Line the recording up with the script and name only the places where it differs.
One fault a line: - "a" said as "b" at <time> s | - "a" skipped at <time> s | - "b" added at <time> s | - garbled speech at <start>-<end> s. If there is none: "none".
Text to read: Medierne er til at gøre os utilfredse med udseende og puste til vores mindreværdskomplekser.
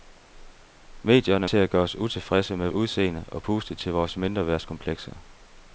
none